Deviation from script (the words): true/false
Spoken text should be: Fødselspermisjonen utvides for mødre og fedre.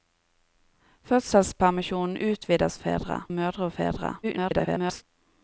true